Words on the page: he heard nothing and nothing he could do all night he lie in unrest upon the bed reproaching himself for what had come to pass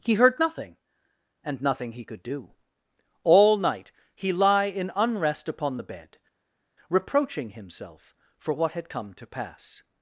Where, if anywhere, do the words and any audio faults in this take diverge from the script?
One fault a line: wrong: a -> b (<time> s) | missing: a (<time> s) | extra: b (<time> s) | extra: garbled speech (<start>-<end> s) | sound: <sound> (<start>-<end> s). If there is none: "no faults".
no faults